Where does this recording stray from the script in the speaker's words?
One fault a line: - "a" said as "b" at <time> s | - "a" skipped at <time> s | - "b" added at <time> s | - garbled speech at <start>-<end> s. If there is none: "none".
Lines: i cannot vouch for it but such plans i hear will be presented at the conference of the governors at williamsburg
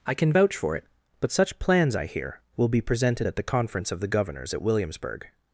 - "cannot" said as "can" at 0.1 s